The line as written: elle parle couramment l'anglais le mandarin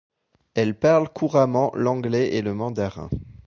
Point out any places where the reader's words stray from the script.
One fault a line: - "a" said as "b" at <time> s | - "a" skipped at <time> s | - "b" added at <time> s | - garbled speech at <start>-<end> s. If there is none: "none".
- "et" added at 2.3 s